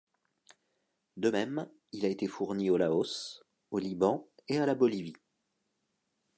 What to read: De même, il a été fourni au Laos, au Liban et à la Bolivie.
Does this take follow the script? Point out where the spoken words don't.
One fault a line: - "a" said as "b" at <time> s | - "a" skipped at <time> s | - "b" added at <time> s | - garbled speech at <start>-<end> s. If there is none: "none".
none